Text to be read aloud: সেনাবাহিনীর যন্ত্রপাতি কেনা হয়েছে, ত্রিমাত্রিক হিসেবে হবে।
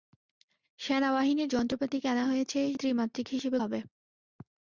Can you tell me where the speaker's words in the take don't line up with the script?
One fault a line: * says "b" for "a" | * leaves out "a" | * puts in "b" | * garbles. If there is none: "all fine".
all fine